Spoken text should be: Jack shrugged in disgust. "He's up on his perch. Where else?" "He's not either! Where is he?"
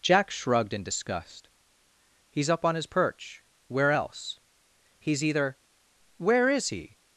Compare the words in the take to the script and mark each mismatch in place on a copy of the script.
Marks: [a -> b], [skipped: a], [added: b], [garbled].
Jack shrugged in disgust. "He's up on his perch. Where else?" "He's [skipped: not] either! Where is he?"